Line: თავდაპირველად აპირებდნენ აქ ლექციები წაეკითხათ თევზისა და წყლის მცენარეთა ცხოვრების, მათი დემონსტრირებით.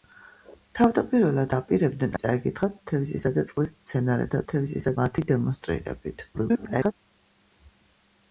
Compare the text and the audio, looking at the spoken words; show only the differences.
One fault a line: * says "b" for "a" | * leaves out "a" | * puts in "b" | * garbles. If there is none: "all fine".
* leaves out "აქ ლექციები"
* says "თევზისა" for "ცხოვრების"
* garbles